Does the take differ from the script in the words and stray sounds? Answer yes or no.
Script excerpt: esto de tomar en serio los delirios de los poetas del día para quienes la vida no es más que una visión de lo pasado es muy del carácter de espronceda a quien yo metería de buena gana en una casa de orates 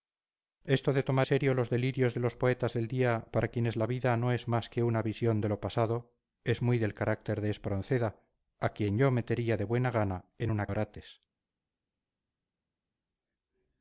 yes